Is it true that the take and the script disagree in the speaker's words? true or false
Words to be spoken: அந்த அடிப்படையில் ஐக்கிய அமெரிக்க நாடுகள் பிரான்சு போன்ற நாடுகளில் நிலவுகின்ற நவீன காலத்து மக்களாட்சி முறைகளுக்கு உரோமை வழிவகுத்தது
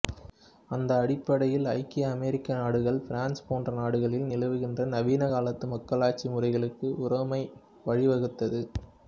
false